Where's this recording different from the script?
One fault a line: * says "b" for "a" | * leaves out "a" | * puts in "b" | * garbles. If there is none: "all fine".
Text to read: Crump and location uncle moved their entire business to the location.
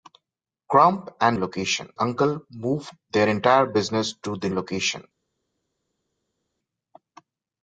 all fine